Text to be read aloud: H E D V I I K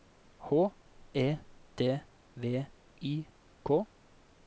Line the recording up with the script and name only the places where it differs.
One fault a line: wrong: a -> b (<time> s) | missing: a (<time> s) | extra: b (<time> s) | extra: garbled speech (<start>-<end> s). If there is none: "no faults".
missing: I (3.3 s)